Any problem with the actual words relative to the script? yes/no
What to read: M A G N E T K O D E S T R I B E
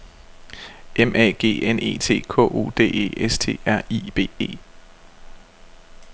no